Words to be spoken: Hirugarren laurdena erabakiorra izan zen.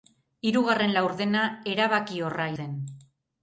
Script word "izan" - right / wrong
wrong